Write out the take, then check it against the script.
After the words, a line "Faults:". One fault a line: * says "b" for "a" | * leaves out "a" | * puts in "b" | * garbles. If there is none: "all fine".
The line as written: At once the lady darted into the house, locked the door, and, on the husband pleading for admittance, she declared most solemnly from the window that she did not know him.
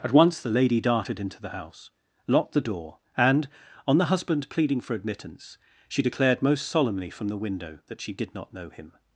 At once the lady darted into the house, locked the door, and, on the husband pleading for admittance, she declared most solemnly from the window that she did not know him.
Faults:
all fine